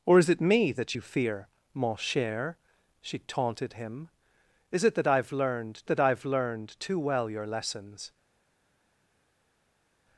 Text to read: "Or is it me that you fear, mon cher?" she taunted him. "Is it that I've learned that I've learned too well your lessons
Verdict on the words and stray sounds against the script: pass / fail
pass